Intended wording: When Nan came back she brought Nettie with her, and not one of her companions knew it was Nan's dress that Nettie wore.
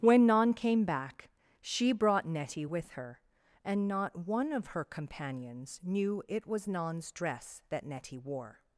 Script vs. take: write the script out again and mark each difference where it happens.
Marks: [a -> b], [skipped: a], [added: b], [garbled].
When Nan came back she brought Nettie with her, and not one of her companions knew it was Nan's dress that Nettie wore.